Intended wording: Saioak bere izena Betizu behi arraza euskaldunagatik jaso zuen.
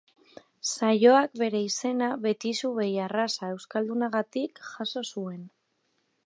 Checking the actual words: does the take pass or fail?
pass